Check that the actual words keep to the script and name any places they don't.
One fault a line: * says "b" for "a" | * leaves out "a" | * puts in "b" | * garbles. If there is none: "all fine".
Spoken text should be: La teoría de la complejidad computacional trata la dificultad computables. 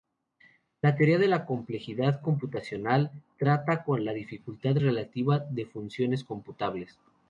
* puts in "con"
* puts in "relativa de funciones"